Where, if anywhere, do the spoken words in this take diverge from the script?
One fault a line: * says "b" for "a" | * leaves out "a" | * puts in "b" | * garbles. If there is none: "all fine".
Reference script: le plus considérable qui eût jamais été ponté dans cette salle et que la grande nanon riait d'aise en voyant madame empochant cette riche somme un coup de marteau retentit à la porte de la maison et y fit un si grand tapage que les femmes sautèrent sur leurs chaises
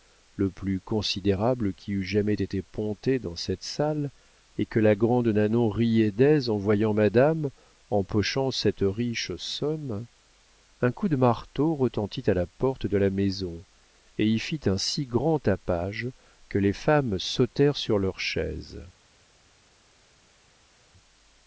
all fine